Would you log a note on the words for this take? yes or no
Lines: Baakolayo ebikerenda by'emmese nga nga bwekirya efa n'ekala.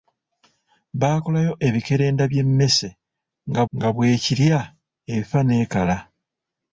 no